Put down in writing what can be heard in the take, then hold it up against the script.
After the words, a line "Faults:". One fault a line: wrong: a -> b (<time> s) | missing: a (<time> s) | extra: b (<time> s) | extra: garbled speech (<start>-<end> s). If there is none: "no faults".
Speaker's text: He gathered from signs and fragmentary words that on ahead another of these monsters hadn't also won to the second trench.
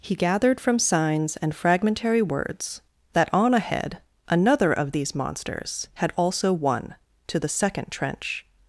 He gathered from signs and fragmentary words that on ahead another of these monsters had also won to the second trench.
Faults:
wrong: hadn't -> had (6.0 s)